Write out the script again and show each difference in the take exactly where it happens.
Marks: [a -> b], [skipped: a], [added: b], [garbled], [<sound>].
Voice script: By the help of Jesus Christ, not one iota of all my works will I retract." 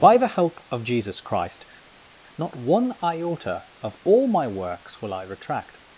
By the help of Jesus Christ, not one iota of all my works will I retract."